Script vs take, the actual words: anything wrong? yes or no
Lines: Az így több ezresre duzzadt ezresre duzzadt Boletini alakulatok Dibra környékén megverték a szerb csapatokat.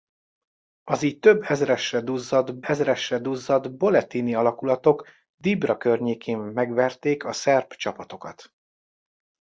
no